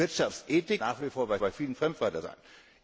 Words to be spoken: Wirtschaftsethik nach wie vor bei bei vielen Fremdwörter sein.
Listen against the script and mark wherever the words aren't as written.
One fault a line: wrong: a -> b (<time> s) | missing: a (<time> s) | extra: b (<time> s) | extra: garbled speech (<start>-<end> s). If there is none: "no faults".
no faults